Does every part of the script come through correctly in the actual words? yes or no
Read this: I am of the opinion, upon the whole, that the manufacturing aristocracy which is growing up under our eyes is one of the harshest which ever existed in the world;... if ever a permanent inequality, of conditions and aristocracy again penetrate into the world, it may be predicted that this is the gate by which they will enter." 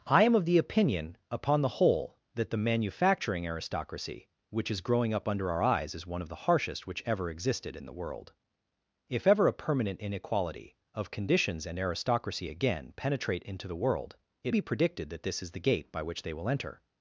no